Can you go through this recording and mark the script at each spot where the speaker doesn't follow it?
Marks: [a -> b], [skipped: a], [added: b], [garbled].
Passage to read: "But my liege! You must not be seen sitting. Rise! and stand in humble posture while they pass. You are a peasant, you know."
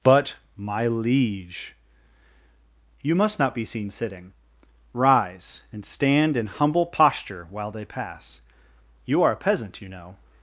"But my liege! You must not be seen sitting. Rise! and stand in humble posture while they pass. You are a peasant, you know."